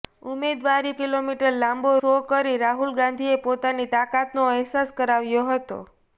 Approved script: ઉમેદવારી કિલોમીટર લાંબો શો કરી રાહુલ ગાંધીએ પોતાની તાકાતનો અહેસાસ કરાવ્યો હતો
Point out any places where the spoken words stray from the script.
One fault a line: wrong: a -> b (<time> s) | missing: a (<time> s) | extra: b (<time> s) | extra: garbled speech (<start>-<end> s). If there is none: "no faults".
no faults